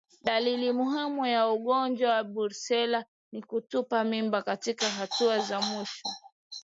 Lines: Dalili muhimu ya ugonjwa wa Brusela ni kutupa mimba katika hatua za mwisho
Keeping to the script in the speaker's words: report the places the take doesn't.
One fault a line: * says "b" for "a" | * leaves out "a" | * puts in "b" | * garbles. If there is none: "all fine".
all fine